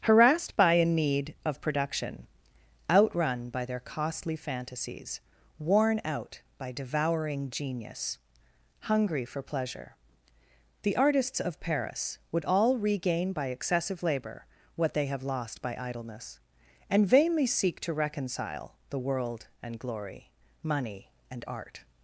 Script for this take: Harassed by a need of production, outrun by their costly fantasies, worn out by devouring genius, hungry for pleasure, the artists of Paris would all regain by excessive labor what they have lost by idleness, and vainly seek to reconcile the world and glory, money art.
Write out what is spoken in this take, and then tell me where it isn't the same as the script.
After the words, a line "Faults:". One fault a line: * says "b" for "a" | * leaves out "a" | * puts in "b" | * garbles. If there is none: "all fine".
Harassed by a need of production, outrun by their costly fantasies, worn out by devouring genius, hungry for pleasure, the artists of Paris would all regain by excessive labor what they have lost by idleness, and vainly seek to reconcile the world and glory, money and art.
Faults:
* puts in "and"